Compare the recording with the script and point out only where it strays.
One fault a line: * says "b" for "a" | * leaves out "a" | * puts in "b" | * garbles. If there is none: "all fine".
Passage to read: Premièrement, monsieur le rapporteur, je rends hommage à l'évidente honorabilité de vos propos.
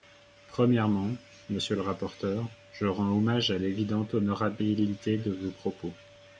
all fine